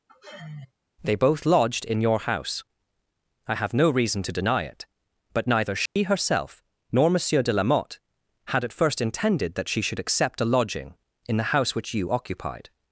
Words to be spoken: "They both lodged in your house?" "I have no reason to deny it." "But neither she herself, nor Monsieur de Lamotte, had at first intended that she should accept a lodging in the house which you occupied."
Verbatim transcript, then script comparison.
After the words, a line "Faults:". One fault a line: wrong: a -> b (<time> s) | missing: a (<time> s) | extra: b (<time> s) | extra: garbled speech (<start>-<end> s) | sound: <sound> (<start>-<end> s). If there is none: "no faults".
"They both lodged in your house?" "I have no reason to deny it." "But neither she herself, nor Monsieur de Lamotte, had at first intended that she should accept a lodging in the house which you occupied."
Faults:
sound: sigh (0.1-0.7 s)
sound: dropout (5.9-6.0 s)